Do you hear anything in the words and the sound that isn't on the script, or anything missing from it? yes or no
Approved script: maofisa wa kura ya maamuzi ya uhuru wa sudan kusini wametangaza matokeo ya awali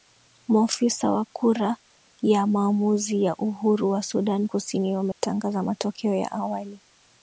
yes